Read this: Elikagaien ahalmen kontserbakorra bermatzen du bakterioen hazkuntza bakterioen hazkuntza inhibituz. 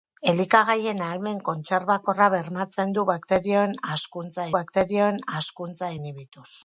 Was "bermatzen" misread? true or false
false